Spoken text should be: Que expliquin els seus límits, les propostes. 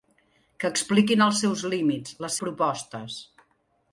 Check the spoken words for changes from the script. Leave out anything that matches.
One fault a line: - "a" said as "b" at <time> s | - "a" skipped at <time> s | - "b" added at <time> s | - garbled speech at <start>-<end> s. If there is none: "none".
none